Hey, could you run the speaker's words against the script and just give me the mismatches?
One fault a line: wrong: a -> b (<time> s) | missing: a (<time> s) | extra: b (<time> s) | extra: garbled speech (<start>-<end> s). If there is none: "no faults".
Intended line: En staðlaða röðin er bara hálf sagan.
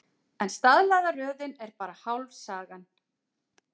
no faults